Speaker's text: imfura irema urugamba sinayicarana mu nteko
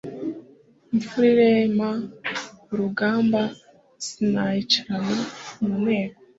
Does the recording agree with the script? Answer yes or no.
yes